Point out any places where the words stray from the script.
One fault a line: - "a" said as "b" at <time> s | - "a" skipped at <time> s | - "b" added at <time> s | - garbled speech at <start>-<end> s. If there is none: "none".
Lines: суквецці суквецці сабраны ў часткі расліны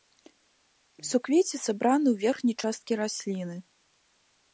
- "суквецці" skipped at 1.6 s
- "верхняй" added at 2.2 s